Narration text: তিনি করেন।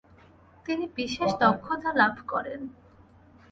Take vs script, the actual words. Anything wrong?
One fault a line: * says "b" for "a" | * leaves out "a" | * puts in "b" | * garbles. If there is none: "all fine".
* puts in "বিশেষ দক্ষতা লাভ"